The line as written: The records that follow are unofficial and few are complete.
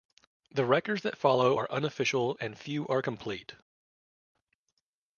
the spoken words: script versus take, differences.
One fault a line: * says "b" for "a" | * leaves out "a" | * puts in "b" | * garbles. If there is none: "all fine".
all fine